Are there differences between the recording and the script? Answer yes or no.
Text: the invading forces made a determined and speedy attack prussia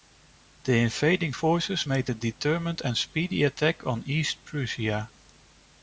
yes